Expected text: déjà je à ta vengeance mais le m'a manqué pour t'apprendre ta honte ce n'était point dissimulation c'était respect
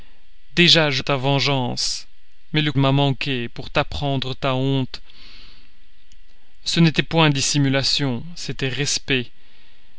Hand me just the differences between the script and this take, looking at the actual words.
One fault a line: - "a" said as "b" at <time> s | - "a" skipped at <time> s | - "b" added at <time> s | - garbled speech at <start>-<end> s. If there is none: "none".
none